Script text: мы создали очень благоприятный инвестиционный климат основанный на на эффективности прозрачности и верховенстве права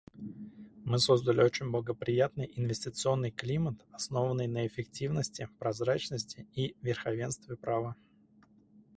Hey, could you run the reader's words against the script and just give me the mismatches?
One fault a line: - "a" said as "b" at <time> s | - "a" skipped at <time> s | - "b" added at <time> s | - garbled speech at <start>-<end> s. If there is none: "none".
- "на" skipped at 4.7 s